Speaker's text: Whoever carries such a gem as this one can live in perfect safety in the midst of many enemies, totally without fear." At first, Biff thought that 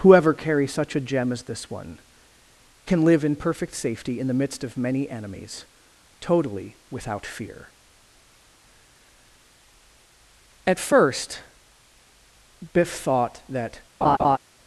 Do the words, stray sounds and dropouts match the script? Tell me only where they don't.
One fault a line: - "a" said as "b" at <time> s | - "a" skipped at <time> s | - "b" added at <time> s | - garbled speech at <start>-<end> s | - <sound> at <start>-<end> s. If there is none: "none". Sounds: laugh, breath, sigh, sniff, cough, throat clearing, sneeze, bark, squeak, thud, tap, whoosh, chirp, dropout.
- laugh at 14.0-14.4 s